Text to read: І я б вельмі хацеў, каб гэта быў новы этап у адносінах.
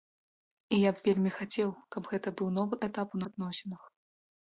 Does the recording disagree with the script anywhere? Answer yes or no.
no